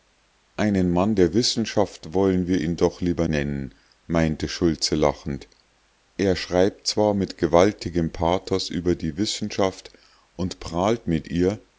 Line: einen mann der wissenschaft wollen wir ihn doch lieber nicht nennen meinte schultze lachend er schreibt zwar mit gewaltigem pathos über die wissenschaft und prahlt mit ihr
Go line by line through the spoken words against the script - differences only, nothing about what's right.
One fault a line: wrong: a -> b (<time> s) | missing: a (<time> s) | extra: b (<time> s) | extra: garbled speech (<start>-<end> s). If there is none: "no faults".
missing: nicht (3.3 s)